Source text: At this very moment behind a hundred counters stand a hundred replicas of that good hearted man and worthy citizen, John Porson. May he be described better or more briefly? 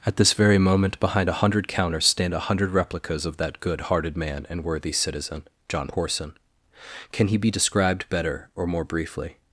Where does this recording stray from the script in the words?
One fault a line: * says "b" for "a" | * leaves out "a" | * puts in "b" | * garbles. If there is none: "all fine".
* says "Can" for "May"